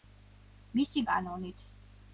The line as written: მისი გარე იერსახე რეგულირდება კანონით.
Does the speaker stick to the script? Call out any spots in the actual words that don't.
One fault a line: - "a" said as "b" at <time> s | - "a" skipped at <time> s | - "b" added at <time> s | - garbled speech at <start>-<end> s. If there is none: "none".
- "გარე იერსახე რეგულირდება" skipped at 1.0 s